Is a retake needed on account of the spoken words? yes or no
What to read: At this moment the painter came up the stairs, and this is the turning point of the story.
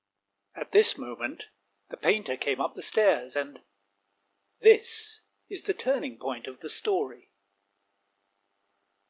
no